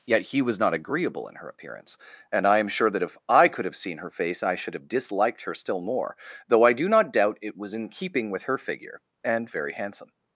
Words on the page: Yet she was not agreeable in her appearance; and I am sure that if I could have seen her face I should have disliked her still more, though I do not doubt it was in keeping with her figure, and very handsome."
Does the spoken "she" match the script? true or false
false